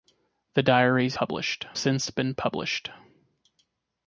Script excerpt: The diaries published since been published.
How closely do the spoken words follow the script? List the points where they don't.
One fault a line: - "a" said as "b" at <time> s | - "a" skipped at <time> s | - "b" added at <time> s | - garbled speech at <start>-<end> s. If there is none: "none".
none